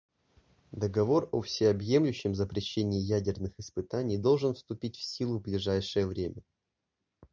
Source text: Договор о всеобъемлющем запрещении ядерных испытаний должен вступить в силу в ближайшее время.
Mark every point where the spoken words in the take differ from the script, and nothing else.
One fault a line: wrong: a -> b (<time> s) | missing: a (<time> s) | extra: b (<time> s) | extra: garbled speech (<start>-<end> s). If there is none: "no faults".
no faults